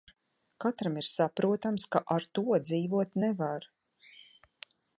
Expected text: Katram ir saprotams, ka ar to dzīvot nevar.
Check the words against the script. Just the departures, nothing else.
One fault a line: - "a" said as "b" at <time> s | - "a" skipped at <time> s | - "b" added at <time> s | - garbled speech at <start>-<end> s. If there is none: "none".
none